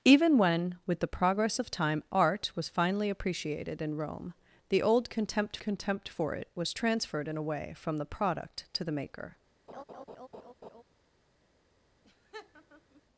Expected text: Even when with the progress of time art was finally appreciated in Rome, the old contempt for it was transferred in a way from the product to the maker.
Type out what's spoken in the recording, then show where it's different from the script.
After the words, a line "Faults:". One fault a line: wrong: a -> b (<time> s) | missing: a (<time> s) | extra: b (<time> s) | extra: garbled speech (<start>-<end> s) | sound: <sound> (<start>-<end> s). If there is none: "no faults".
Even when with the progress of time art was finally appreciated in Rome, the old contempt contempt for it was transferred in a way from the product to the maker.
Faults:
extra: contempt (5.6 s)
sound: laugh (9.7-10.8 s)
sound: laugh (12.0-13.0 s)